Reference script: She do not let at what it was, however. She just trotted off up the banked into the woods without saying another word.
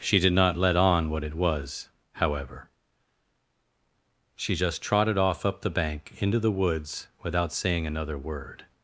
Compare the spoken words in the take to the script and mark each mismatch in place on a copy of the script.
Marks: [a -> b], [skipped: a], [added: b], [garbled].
She [do -> did] not let [at -> on] what it was, however. She just trotted off up the [banked -> bank] into the woods without saying another word.